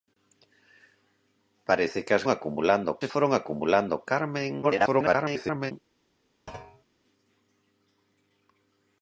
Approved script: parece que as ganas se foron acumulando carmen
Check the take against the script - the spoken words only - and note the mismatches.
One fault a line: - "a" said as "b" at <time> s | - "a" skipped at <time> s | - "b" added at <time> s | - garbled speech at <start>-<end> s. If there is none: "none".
- "ganas" said as "acumulando" at 2.3 s
- garbled speech at 4.6-5.7 s